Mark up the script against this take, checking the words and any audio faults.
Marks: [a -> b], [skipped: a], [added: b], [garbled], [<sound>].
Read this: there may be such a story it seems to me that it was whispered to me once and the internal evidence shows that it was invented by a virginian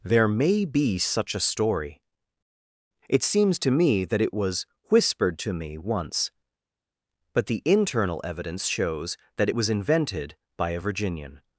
there may be such a story it seems to me that it was whispered to me once [and -> but] the internal evidence shows that it was invented by a virginian